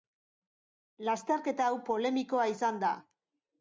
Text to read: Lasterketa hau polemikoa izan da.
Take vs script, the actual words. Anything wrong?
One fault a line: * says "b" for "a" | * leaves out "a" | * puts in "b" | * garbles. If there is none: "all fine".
all fine